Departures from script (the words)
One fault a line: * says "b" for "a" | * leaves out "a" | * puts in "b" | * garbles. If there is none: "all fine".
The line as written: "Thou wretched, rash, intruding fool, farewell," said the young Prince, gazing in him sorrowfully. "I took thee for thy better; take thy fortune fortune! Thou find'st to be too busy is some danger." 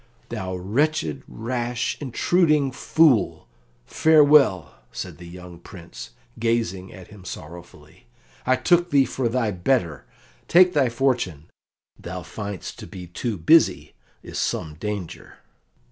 * says "at" for "in"
* leaves out "fortune"